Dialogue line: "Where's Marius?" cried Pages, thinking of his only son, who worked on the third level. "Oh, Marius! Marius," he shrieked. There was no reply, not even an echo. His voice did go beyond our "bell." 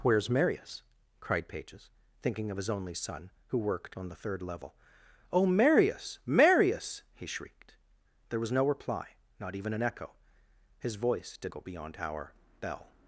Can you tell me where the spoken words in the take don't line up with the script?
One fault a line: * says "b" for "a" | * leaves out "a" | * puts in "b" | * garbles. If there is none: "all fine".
all fine